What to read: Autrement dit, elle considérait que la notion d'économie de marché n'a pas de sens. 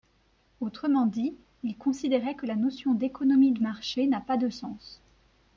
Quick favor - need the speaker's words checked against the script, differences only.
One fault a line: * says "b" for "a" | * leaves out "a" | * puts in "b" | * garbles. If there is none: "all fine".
* says "il" for "elle"